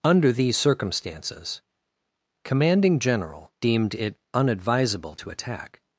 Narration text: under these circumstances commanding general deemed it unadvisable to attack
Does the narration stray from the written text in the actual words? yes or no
no